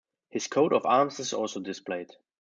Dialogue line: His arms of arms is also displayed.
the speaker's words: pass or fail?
fail